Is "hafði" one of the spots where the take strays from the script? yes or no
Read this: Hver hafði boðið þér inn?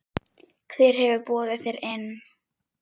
yes